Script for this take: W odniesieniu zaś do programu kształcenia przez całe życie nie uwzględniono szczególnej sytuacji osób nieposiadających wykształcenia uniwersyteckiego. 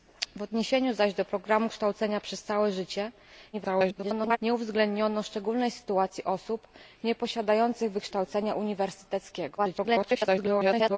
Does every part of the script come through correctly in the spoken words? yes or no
no